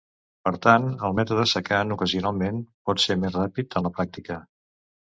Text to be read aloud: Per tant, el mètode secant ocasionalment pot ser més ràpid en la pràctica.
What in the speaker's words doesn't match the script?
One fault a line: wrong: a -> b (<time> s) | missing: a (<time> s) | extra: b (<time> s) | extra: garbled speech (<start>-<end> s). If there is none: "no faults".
no faults